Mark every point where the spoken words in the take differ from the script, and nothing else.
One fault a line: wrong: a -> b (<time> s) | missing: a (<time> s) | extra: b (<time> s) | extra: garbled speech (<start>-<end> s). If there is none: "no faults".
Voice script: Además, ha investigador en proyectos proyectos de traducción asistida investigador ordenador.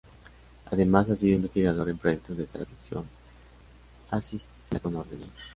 extra: sido (1.1 s)
missing: proyectos (2.4 s)
wrong: investigador -> con (4.8 s)